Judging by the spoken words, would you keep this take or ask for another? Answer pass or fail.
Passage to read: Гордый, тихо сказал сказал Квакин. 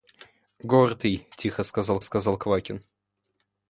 pass